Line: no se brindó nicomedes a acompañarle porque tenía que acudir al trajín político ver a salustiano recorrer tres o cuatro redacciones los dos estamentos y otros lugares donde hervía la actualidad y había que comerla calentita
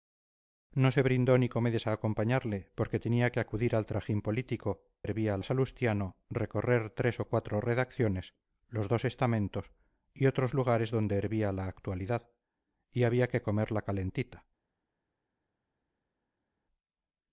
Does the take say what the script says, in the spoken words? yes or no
no